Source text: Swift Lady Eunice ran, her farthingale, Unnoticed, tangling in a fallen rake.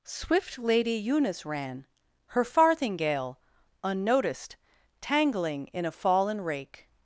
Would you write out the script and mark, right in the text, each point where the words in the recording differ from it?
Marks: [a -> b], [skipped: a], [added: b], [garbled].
Swift Lady Eunice ran, her farthingale, Unnoticed, tangling in a fallen rake.